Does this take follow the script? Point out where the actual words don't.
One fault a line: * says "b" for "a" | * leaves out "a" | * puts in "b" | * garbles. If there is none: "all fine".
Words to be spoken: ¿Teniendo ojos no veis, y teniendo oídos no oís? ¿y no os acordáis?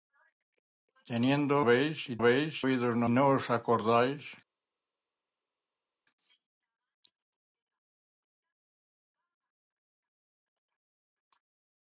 * leaves out "ojos no"
* says "veis" for "teniendo"
* leaves out "oís y"